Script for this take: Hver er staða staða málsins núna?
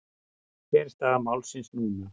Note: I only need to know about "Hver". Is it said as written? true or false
true